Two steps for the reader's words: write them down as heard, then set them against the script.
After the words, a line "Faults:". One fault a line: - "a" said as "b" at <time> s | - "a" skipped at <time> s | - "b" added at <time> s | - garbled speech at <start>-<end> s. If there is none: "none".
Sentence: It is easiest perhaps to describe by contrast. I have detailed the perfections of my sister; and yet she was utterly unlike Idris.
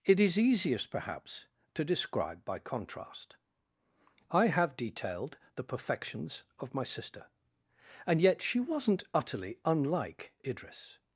It is easiest perhaps to describe by contrast. I have detailed the perfections of my sister; and yet she wasn't utterly unlike Idris.
Faults:
- "was" said as "wasn't" at 8.6 s